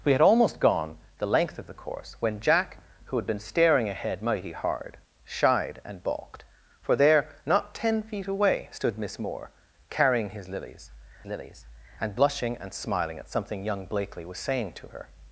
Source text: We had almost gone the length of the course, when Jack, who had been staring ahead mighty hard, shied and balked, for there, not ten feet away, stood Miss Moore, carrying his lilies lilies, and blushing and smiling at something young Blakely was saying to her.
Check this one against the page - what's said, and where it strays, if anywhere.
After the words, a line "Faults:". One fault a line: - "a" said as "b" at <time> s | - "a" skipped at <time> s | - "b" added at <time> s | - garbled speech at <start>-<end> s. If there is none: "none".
We had almost gone the length of the course, when Jack, who had been staring ahead mighty hard, shied and balked, for there, not ten feet away, stood Miss Moore, carrying his lilies lilies, and blushing and smiling at something young Blakely was saying to her.
Faults:
none